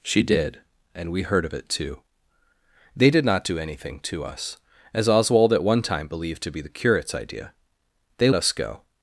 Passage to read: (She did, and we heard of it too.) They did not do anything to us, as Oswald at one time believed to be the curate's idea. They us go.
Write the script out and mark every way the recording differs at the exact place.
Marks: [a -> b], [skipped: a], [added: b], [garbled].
(She did, and we heard of it too.) They did not do anything to us, as Oswald at one time believed to be the curate's idea. They us go.